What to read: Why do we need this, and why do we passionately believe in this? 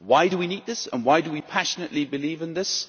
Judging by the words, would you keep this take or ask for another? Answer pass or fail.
pass